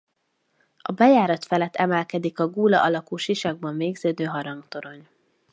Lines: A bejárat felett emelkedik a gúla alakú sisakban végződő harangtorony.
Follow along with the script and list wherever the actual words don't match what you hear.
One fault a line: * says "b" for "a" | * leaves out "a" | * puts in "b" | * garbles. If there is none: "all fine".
all fine